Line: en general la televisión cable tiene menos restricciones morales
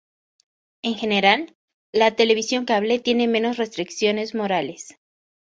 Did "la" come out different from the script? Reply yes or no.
no